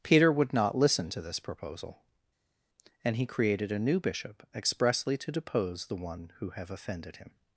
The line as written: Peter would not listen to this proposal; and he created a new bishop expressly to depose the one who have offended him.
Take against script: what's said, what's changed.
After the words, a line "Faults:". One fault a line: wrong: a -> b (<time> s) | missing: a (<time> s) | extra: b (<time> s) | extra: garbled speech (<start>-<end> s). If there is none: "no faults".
Peter would not listen to this proposal; and he created a new bishop expressly to depose the one who have offended him.
Faults:
no faults